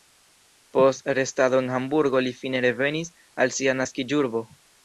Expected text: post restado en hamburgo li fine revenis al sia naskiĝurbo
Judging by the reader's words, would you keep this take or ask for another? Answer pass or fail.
pass